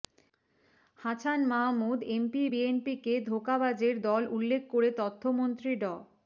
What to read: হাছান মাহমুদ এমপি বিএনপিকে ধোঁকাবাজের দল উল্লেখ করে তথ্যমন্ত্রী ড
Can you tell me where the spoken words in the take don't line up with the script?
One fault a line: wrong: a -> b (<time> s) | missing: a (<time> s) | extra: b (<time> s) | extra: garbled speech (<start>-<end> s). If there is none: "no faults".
no faults